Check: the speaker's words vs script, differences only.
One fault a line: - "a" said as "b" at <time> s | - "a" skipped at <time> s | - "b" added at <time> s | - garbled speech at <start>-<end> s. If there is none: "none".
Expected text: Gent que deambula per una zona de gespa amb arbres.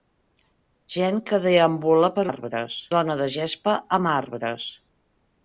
- "una" said as "arbres" at 2.3 s